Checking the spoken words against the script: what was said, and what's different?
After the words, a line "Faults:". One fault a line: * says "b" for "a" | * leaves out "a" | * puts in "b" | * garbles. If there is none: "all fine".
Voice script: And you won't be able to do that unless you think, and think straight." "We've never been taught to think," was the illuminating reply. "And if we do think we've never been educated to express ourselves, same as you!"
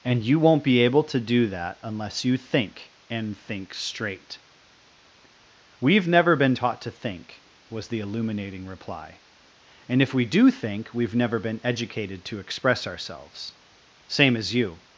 And you won't be able to do that unless you think, and think straight." "We've never been taught to think," was the illuminating reply. "And if we do think we've never been educated to express ourselves, same as you!"
Faults:
all fine